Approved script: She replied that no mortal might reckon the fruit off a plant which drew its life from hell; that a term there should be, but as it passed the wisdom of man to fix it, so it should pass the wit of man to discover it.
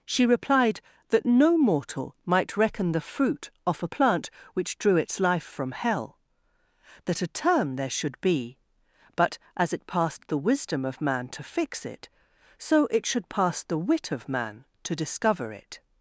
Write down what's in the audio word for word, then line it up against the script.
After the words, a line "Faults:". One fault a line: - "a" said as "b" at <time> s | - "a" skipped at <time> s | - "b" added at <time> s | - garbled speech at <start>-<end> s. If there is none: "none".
She replied that no mortal might reckon the fruit off a plant which drew its life from hell; that a term there should be, but as it passed the wisdom of man to fix it, so it should pass the wit of man to discover it.
Faults:
none